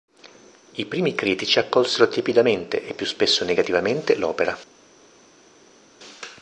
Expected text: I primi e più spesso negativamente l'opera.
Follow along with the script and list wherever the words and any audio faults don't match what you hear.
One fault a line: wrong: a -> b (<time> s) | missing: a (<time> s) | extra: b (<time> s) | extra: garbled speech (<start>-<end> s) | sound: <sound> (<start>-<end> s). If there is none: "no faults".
extra: critici accolsero tiepidamente (1.1 s)